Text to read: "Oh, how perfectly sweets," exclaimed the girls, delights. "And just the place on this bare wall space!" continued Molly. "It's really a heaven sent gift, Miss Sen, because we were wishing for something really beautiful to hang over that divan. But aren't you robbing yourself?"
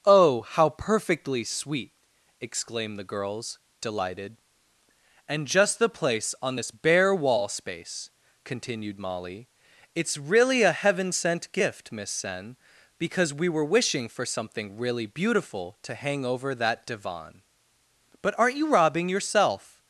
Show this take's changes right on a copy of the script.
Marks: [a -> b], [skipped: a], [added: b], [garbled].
"Oh, how perfectly [sweets," -> sweet] exclaimed the girls, [delights. -> delighted] "And just the place on this bare wall space!" continued Molly. "It's really a heaven sent gift, Miss Sen, because we were wishing for something really beautiful to hang over that divan. But aren't you robbing yourself?"